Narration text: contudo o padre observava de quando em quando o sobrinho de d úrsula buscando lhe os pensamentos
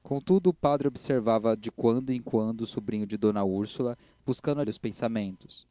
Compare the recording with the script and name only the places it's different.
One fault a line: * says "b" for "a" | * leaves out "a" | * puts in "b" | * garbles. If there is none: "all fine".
all fine